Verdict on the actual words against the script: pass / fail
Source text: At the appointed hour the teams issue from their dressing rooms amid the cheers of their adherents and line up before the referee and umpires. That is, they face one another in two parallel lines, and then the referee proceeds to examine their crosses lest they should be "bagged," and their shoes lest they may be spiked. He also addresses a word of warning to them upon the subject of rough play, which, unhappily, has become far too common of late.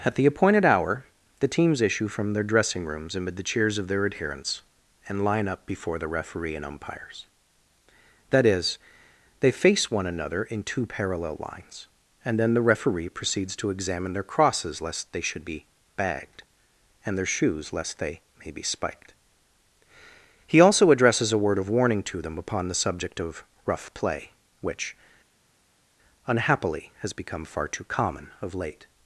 pass